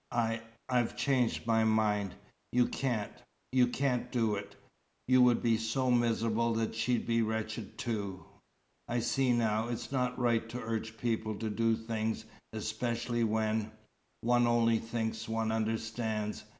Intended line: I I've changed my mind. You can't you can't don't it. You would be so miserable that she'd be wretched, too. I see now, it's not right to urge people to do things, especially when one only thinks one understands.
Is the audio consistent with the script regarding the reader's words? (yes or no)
no